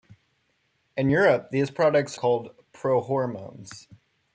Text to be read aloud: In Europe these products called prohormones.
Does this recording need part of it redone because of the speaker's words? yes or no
no